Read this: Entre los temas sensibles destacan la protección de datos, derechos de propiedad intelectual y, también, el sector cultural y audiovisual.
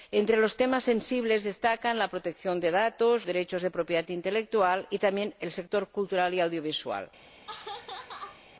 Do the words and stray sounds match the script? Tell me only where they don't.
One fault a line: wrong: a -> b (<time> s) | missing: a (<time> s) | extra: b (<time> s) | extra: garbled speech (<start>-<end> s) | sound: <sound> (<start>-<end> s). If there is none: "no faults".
sound: laugh (7.2-8.5 s)